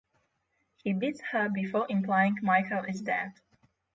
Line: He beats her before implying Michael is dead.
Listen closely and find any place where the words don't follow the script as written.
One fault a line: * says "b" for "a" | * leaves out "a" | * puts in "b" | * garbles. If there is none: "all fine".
all fine